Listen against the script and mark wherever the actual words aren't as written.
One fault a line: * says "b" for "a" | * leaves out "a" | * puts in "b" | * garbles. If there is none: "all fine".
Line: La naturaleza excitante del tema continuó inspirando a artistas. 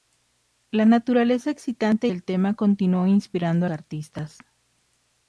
all fine